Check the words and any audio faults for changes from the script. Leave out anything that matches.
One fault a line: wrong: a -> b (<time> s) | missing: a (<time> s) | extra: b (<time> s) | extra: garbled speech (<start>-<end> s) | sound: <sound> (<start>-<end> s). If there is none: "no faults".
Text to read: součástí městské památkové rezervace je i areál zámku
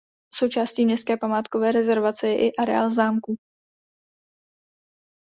no faults